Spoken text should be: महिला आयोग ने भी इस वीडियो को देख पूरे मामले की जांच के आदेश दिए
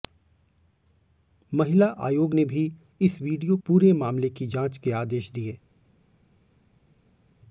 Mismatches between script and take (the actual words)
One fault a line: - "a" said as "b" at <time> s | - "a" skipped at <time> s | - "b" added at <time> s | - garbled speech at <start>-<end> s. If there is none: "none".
- "को देख" skipped at 3.6 s